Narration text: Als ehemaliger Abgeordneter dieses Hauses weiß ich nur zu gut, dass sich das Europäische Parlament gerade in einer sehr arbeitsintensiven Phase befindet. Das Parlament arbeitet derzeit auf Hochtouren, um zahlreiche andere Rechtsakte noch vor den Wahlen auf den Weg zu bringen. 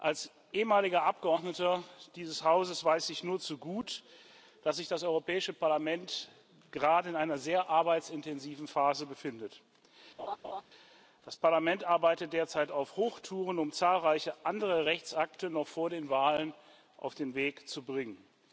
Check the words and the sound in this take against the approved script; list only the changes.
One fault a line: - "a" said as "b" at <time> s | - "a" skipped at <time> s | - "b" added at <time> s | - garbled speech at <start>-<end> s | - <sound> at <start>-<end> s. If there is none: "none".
- laugh at 10.2-10.6 s